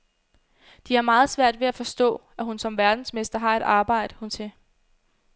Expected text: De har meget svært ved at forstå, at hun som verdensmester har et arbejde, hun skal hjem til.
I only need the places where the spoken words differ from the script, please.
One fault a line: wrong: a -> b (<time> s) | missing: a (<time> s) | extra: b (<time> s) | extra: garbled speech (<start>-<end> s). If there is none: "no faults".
missing: skal hjem (4.3 s)